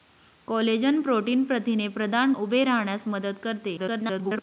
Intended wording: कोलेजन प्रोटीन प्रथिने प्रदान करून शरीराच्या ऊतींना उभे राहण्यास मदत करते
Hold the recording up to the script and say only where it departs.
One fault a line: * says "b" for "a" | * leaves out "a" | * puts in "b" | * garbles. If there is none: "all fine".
* leaves out "करून शरीराच्या ऊतींना"
* garbles